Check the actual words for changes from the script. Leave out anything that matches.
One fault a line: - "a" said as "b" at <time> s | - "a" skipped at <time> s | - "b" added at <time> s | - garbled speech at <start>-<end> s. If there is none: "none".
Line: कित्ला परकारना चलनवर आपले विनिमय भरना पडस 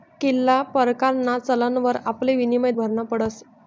none